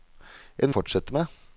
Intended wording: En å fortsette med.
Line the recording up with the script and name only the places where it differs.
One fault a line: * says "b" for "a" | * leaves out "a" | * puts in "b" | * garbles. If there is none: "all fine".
all fine